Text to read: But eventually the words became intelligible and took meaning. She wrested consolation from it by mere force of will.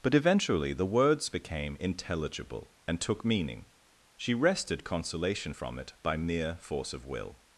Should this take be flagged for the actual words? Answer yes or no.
no